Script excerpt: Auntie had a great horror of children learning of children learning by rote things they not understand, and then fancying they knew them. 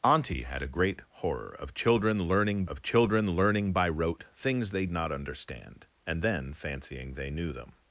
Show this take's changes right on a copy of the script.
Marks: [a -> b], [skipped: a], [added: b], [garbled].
Auntie had a great horror of children learning of children learning by rote things they not understand, and then fancying they knew them.